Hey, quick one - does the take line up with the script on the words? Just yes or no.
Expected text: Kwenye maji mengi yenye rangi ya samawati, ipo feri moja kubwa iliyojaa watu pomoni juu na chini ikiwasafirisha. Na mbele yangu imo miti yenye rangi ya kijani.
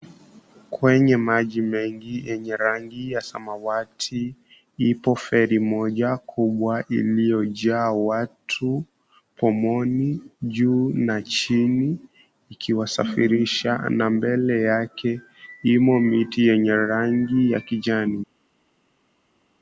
no